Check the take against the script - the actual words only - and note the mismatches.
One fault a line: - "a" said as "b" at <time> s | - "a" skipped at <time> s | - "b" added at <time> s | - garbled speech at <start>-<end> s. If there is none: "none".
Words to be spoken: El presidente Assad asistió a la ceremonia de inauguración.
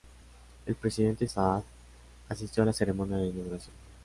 none